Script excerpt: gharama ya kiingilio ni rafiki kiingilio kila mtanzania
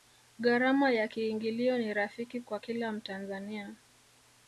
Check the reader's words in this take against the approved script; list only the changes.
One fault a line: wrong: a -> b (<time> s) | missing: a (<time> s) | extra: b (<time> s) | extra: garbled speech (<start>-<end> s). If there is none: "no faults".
wrong: kiingilio -> kwa (2.4 s)